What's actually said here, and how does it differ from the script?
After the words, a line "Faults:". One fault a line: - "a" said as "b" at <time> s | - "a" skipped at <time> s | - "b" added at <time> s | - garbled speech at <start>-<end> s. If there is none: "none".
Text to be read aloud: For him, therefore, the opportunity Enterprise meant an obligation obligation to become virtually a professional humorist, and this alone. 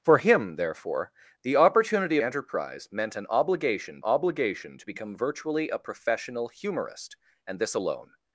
For him, therefore, the opportunity Enterprise meant an obligation obligation to become virtually a professional humorist, and this alone.
Faults:
none